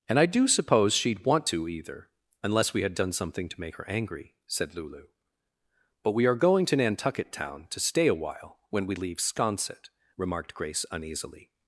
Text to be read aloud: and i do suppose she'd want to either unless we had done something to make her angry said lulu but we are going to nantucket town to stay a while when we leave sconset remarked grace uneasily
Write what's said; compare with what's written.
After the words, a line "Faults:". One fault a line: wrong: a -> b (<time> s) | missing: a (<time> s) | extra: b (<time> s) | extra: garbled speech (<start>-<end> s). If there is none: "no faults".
and i do suppose she'd want to either unless we had done something to make her angry said lulu but we are going to nantucket town to stay a while when we leave sconset remarked grace uneasily
Faults:
no faults